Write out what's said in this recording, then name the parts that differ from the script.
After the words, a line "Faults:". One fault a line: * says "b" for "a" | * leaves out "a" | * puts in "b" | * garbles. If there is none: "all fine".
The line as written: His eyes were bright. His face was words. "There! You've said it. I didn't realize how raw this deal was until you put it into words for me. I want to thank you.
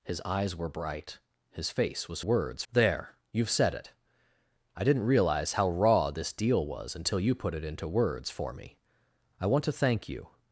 His eyes were bright. His face was words. "There! You've said it. I didn't realize how raw this deal was until you put it into words for me. I want to thank you.
Faults:
all fine